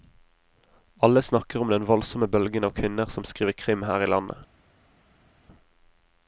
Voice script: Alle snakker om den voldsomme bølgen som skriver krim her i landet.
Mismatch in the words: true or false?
true